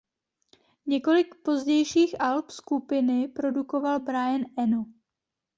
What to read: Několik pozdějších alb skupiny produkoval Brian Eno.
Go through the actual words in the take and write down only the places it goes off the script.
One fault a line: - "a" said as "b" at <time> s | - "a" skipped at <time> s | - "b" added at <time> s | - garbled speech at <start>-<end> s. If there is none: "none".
none